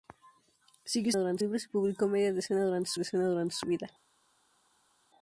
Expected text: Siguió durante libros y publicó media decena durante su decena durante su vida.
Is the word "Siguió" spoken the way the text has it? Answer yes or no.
yes